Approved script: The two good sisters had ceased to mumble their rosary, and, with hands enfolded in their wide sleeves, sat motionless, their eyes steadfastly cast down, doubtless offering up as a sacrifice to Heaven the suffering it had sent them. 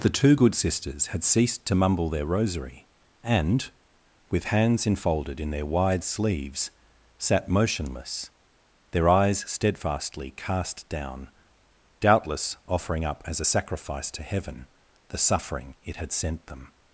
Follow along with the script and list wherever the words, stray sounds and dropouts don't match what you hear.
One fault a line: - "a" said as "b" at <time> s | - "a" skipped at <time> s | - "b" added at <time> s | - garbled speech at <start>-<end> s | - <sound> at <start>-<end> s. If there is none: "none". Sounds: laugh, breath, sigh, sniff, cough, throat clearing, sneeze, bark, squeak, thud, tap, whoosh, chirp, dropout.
none